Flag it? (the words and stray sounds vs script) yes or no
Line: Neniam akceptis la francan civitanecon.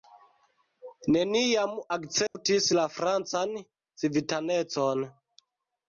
yes